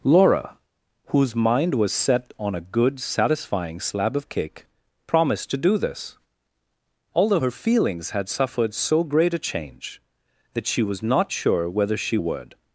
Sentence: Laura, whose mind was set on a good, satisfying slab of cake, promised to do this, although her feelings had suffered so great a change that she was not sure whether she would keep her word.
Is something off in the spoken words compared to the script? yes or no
yes